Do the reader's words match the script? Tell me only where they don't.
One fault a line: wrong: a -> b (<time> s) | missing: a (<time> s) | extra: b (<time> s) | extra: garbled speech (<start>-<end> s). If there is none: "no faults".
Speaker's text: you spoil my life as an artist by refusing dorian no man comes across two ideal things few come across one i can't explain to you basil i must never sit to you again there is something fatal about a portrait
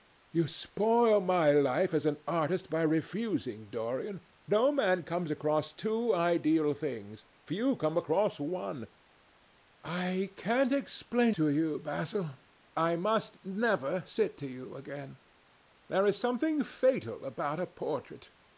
no faults